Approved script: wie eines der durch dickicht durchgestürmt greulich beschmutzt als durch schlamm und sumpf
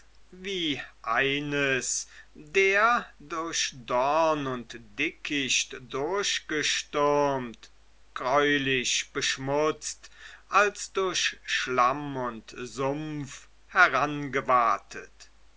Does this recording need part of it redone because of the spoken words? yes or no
yes